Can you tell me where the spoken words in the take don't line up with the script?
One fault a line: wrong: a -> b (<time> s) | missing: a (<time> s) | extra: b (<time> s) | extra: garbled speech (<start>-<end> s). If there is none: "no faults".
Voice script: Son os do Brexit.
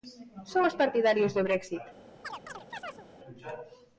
extra: partidarios (0.8 s)